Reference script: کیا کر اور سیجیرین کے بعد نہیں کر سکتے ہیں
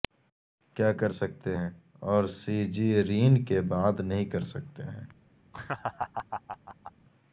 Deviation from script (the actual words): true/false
true